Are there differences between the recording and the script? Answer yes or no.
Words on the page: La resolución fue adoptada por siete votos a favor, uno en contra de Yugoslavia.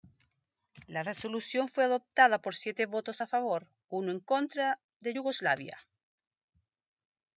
no